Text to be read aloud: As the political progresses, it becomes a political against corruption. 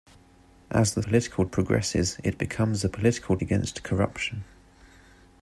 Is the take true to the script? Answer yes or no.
yes